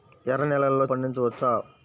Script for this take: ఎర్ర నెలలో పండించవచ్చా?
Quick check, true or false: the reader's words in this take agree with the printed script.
true